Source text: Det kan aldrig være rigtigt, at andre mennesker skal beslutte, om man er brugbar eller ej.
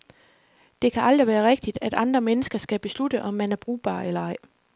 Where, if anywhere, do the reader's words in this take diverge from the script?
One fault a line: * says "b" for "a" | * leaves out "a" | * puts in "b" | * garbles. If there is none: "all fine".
all fine